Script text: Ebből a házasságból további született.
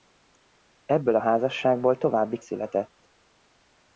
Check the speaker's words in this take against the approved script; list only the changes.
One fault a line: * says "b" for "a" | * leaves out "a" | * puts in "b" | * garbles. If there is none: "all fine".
all fine